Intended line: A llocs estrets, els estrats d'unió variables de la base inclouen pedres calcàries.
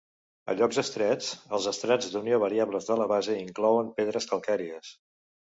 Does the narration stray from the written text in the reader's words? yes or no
no